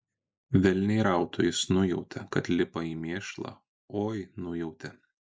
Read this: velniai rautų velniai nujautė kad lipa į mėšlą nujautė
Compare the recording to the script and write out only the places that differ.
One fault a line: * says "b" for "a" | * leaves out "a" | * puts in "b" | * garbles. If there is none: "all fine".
* says "jis" for "velniai"
* puts in "oi"